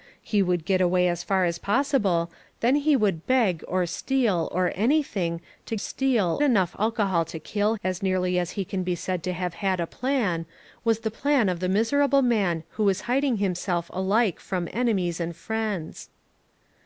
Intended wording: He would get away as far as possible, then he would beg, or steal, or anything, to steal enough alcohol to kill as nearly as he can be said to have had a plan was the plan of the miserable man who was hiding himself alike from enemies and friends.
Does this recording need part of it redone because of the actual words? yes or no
no